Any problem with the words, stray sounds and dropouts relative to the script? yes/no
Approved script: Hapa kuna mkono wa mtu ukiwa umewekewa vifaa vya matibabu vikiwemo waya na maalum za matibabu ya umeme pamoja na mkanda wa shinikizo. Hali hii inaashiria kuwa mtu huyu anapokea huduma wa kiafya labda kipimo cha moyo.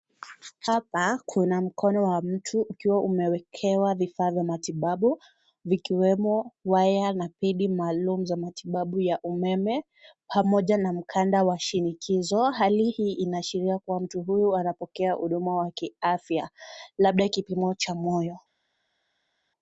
yes